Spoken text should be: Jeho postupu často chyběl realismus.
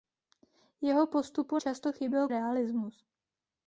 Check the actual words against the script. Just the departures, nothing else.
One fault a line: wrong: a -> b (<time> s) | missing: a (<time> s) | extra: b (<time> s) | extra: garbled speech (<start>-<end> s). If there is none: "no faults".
no faults